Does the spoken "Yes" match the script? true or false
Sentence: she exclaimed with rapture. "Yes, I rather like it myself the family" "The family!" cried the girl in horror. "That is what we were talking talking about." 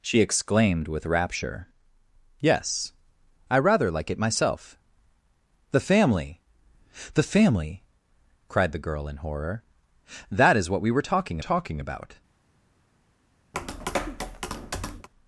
true